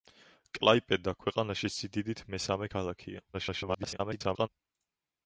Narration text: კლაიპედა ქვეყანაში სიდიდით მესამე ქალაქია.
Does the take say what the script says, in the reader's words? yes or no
no